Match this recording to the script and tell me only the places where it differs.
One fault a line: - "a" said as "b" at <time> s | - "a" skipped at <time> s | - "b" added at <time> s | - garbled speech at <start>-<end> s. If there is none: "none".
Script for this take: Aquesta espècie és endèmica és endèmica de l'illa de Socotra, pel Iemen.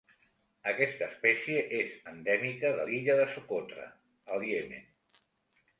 - "és endèmica" skipped at 2.7 s
- "pel" said as "al" at 4.4 s